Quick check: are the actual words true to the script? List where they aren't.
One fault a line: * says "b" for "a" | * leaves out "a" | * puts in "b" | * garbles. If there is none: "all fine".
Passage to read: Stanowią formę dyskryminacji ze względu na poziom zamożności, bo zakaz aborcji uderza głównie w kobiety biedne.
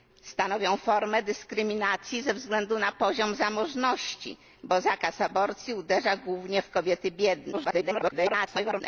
* garbles